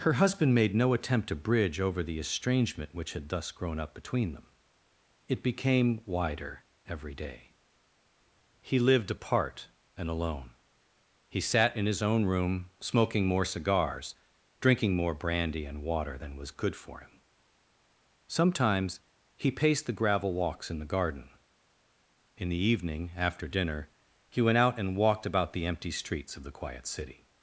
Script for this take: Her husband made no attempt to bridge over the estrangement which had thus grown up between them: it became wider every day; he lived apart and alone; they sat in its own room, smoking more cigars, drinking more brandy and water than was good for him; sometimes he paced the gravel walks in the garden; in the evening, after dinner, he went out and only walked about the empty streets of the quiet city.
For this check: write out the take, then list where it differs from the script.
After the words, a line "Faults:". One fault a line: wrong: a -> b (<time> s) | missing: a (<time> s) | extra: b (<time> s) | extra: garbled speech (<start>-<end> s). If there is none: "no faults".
Her husband made no attempt to bridge over the estrangement which had thus grown up between them: it became wider every day; he lived apart and alone; he sat in his own room, smoking more cigars, drinking more brandy and water than was good for him; sometimes he paced the gravel walks in the garden; in the evening, after dinner, he went out and walked about the empty streets of the quiet city.
Faults:
wrong: they -> he (11.3 s)
wrong: its -> his (11.9 s)
missing: only (25.0 s)